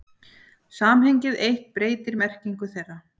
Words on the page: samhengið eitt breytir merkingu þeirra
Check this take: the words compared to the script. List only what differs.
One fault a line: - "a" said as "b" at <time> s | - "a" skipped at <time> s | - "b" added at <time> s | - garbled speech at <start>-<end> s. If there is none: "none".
none